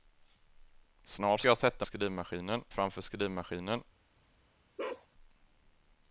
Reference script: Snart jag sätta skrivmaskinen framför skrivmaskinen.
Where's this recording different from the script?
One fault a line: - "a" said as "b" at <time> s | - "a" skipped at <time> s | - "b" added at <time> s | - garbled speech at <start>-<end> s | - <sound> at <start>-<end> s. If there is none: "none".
- bark at 4.8-5.1 s